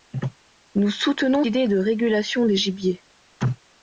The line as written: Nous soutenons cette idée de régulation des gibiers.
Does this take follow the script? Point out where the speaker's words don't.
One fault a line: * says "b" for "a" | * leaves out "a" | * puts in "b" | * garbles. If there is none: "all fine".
* leaves out "cette"